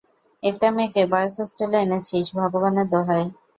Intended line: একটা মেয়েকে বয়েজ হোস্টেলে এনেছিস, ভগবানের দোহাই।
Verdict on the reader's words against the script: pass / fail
pass